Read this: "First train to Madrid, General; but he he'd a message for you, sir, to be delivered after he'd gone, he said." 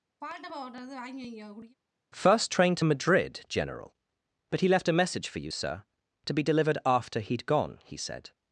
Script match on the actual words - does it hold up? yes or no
no